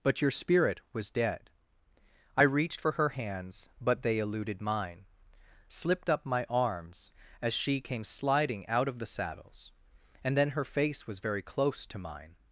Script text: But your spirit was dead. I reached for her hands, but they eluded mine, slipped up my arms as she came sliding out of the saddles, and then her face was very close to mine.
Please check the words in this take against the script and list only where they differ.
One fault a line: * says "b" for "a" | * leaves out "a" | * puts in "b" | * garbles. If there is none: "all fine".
all fine